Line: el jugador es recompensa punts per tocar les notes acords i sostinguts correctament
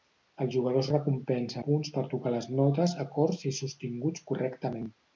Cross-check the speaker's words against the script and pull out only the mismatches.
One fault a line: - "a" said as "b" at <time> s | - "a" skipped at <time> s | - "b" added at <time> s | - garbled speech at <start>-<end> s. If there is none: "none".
none